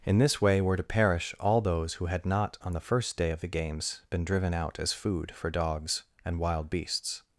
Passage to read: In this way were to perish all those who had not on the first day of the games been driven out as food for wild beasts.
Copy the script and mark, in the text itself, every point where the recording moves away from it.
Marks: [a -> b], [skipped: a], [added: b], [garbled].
In this way were to perish all those who had not on the first day of the games been driven out as food for [added: dogs and] wild beasts.